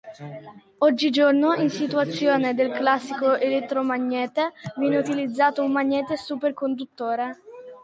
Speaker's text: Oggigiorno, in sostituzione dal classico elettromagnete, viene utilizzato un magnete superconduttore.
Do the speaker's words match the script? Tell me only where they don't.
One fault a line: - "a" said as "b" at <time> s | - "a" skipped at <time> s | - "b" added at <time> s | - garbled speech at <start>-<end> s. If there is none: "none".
- "dal" said as "del" at 2.5 s